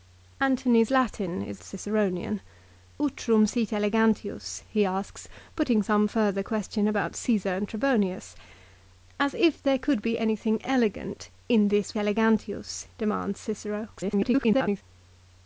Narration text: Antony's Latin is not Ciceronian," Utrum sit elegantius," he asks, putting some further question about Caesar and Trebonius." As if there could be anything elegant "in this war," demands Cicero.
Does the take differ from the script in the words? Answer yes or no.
yes